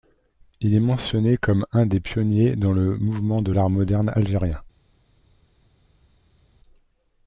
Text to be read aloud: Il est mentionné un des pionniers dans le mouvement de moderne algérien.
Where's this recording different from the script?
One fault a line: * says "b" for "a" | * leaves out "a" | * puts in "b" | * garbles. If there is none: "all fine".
* puts in "comme"
* puts in "l'art"